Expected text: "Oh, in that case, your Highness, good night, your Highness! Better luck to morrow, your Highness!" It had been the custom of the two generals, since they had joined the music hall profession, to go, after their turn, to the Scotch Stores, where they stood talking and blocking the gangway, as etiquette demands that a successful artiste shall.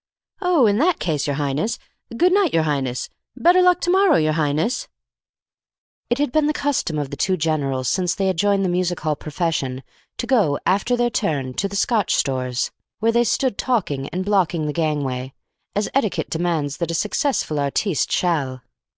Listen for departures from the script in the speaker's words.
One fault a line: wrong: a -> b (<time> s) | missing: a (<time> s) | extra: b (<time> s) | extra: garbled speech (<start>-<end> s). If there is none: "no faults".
no faults